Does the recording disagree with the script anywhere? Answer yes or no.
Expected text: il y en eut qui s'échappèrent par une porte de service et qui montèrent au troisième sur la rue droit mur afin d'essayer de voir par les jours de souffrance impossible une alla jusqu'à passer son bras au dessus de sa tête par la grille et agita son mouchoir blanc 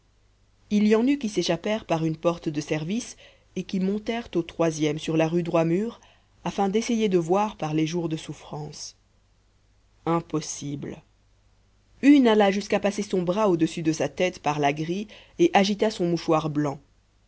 no